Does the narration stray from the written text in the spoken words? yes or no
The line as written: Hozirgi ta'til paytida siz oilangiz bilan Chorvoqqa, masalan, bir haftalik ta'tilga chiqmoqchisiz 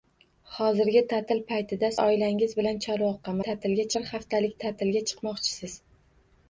yes